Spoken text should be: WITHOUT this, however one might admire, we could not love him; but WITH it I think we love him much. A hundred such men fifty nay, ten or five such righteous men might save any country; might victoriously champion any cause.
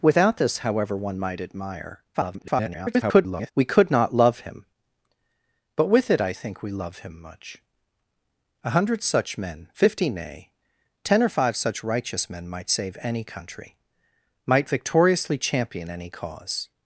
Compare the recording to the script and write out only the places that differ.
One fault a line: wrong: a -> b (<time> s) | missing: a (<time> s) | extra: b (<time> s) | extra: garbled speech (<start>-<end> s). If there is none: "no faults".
extra: garbled speech (2.1-3.5 s)